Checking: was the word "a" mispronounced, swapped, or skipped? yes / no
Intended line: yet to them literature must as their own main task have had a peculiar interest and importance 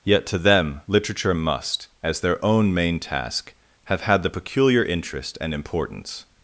yes